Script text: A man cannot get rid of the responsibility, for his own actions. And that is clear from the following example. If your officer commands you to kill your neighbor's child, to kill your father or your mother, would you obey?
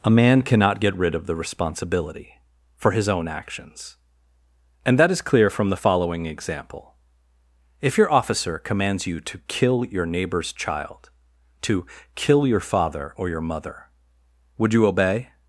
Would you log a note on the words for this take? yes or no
no